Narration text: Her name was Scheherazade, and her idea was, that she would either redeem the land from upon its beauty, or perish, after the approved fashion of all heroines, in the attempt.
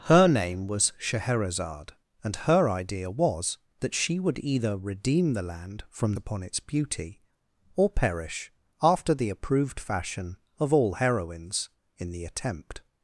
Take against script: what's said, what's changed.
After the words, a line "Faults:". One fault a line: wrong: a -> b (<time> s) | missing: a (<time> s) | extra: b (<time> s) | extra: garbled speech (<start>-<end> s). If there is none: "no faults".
Her name was Scheherazade, and her idea was, that she would either redeem the land from upon its beauty, or perish, after the approved fashion of all heroines, in the attempt.
Faults:
no faults